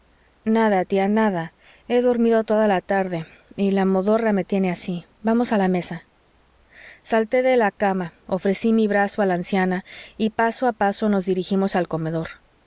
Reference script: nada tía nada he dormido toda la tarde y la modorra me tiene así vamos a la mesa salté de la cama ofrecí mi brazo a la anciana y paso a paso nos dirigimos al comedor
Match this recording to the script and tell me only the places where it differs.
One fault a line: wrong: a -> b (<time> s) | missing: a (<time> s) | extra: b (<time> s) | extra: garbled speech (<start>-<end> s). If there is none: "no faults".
no faults